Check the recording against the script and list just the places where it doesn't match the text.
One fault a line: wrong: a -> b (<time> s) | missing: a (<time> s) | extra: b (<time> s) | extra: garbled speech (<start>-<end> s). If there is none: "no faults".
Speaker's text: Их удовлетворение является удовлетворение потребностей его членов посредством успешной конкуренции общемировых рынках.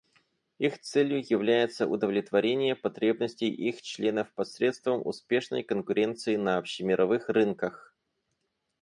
wrong: удовлетворение -> целью (0.8 s)
wrong: его -> их (3.5 s)
extra: на (6.4 s)